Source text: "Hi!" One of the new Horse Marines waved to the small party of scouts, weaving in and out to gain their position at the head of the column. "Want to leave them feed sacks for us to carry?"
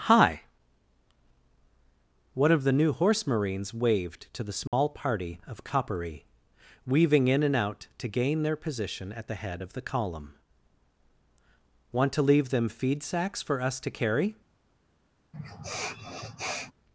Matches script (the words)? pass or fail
fail